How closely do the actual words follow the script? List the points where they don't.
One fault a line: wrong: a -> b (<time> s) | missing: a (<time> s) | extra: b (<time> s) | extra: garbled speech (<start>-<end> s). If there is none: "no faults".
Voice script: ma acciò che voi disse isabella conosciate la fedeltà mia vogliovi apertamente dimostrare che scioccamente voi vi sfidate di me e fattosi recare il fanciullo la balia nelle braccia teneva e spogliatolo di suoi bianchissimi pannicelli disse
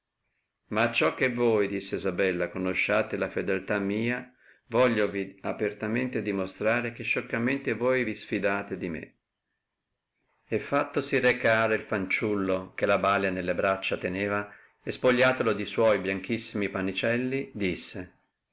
extra: che (12.7 s)